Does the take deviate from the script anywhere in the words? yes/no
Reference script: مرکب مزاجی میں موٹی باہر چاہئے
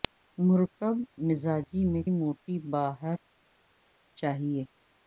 no